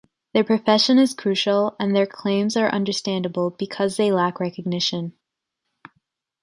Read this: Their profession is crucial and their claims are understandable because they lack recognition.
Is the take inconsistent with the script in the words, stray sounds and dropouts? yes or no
no